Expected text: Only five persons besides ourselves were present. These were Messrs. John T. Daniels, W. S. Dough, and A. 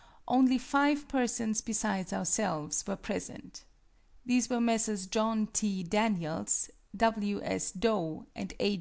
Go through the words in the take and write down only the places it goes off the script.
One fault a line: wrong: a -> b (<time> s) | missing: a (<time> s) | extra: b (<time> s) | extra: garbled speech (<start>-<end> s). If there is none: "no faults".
no faults